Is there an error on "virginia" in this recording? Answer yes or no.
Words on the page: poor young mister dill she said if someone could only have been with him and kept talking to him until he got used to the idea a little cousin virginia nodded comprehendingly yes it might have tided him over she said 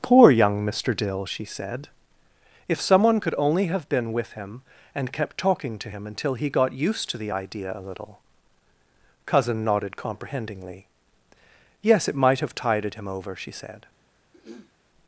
yes